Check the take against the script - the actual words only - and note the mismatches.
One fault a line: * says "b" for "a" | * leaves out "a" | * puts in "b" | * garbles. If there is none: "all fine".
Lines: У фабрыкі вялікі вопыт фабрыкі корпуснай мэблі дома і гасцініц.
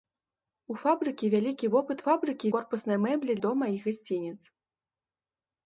all fine